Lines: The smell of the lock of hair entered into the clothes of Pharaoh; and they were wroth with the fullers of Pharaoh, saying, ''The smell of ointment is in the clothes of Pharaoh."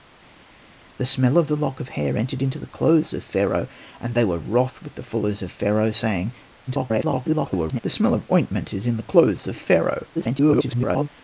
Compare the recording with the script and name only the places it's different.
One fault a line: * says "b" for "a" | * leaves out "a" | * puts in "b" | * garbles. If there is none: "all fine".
* garbles
* garbles